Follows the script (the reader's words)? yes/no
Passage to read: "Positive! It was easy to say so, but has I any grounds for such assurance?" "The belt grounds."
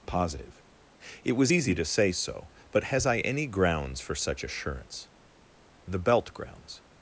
yes